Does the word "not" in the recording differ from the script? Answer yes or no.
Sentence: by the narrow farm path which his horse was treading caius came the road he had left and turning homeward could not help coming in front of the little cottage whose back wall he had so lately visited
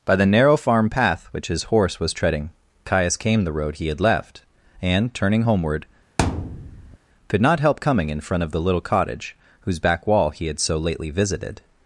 no